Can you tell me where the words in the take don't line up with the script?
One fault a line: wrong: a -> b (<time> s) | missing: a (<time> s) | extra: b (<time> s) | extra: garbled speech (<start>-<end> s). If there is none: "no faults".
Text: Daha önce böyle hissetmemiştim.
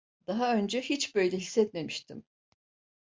extra: hiç (0.8 s)